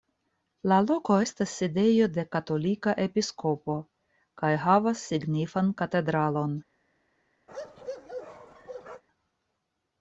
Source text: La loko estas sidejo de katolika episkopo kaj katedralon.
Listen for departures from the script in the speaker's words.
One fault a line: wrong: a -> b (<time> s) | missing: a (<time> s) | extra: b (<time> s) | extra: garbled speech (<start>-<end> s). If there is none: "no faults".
extra: havas signifan (4.7 s)